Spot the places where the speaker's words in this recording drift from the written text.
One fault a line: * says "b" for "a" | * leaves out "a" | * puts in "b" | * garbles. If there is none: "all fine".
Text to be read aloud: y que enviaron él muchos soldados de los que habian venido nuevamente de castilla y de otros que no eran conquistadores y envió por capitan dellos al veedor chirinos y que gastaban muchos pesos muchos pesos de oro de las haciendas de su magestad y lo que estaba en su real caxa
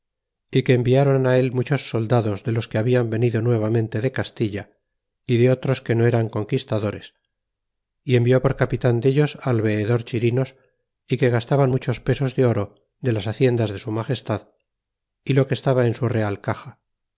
* leaves out "muchos pesos"